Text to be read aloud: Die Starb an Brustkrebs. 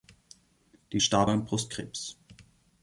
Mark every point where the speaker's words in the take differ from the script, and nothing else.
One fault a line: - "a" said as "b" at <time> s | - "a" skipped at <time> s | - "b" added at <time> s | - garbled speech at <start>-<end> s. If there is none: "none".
none